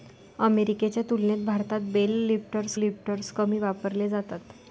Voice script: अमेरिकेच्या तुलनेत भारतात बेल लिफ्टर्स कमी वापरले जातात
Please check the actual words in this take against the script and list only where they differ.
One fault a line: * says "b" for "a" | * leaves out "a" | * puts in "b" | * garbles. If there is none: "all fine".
* puts in "लिफ्टर्स"